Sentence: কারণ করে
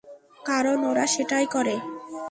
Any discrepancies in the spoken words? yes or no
yes